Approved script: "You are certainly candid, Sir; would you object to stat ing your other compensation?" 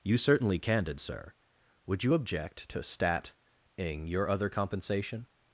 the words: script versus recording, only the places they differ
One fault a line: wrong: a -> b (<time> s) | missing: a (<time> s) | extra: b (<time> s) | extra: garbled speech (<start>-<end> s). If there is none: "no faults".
missing: are (0.2 s)